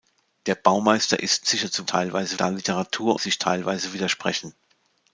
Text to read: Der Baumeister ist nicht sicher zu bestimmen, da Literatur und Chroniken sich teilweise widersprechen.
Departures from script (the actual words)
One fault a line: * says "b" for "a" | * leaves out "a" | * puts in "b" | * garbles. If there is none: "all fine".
* leaves out "nicht"
* says "teilweise" for "bestimmen"
* leaves out "und Chroniken"